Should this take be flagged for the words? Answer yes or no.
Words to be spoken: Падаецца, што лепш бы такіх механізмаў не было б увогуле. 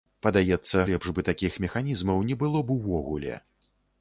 yes